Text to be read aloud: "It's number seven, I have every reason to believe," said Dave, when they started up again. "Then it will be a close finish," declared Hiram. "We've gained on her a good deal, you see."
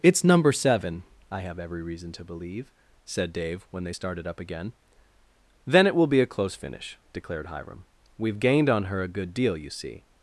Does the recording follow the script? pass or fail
pass